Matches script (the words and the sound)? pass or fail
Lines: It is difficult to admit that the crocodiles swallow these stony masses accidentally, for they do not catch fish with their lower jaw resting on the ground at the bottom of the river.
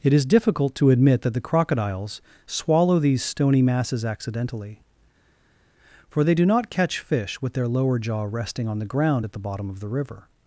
pass